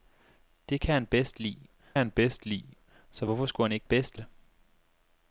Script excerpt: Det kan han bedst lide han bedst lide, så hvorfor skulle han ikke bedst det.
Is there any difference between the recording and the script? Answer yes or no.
no